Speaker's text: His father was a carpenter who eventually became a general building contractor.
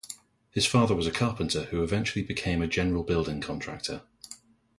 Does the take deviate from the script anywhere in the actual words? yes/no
no